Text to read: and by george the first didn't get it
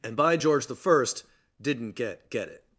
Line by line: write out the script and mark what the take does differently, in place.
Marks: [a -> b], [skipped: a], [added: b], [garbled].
and by george the first didn't get [added: get] it